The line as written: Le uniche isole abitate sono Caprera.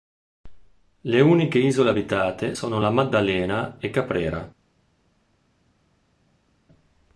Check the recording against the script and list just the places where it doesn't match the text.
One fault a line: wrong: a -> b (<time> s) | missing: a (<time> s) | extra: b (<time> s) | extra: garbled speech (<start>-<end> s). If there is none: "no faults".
extra: La Maddalena e (2.8 s)